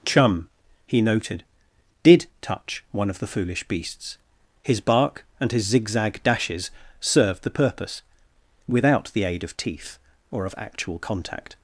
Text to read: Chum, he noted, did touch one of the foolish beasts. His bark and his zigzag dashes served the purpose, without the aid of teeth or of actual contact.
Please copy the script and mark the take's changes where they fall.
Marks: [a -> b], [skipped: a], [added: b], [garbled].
Chum, he noted, did touch one of the foolish beasts. His bark and his zigzag dashes served the purpose, without the aid of teeth or of actual contact.